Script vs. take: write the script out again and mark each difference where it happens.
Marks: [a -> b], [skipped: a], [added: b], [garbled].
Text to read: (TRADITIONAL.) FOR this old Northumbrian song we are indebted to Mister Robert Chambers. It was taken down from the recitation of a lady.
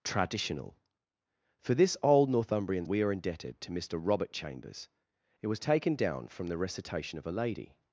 (TRADITIONAL.) FOR this old Northumbrian [skipped: song] we are indebted to Mister Robert Chambers. It was taken down from the recitation of a lady.